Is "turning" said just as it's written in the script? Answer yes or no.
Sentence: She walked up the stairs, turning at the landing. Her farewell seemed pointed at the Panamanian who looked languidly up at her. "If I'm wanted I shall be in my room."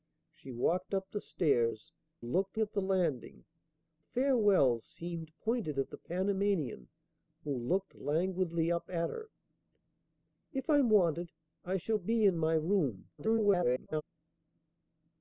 no